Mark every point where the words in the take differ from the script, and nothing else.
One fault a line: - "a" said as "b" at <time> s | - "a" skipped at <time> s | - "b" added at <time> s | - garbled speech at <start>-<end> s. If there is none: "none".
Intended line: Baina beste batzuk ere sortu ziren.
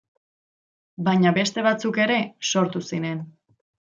none